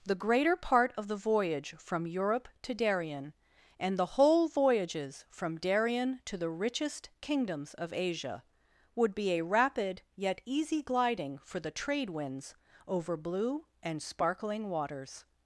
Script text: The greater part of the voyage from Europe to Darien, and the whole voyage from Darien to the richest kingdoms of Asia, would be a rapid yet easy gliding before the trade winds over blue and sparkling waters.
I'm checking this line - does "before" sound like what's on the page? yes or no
no